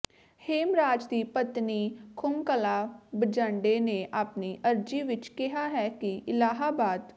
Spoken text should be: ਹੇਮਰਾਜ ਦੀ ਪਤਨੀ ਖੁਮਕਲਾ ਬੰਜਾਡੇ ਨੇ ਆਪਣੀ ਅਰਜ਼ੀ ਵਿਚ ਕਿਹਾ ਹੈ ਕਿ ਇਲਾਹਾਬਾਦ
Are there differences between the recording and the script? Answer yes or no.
no